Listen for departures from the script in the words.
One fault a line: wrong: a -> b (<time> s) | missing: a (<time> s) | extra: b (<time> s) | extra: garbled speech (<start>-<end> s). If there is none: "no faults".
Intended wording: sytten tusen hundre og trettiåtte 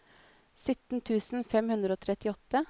extra: fem (1.5 s)